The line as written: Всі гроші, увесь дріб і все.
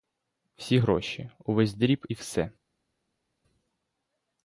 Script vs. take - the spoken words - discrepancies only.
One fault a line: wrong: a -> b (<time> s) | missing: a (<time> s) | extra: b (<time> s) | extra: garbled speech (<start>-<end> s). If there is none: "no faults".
no faults